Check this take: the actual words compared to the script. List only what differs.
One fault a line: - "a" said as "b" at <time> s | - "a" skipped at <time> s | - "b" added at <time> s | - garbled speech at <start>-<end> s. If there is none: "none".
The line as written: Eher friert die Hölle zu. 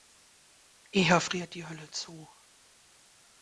none